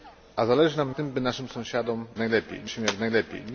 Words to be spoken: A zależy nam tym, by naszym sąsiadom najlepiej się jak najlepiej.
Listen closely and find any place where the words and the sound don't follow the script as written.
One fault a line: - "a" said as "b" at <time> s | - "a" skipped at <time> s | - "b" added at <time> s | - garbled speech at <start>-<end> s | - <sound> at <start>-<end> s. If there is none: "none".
none